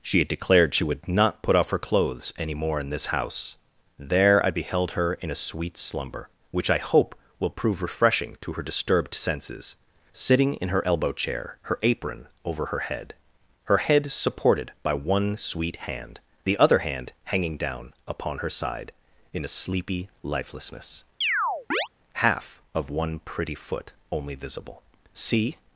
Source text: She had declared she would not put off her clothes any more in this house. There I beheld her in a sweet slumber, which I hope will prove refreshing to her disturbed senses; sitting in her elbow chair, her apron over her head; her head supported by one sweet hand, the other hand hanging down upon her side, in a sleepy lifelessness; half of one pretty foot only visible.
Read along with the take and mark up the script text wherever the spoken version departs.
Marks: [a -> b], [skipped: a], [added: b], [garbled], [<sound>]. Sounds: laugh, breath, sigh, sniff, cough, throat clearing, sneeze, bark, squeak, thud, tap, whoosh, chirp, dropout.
She had declared she would not put off her clothes any more in this house. There I beheld her in a sweet slumber, which I hope will prove refreshing to her disturbed senses; sitting in her elbow chair, her apron over her head; her head supported by one sweet hand, the other hand hanging down upon her side, in a sleepy lifelessness; [chirp] half of one pretty foot only visible. [added: See]